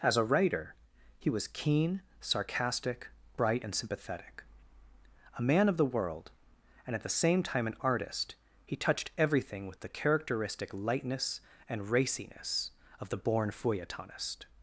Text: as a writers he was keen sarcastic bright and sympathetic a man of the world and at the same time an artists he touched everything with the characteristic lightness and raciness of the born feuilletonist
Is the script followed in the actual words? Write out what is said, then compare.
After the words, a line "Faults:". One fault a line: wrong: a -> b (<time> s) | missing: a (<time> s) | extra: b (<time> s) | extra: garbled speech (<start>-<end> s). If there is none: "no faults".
as a writer he was keen sarcastic bright and sympathetic a man of the world and at the same time an artist he touched everything with the characteristic lightness and raciness of the born feuilletonist
Faults:
wrong: writers -> writer (0.2 s)
wrong: artists -> artist (7.8 s)